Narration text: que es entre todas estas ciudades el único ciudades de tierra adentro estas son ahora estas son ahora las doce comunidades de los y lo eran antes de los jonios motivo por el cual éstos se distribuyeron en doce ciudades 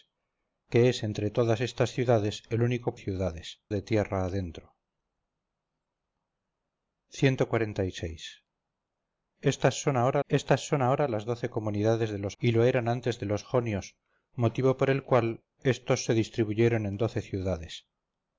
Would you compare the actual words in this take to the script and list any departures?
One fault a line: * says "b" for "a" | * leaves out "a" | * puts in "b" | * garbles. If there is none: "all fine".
all fine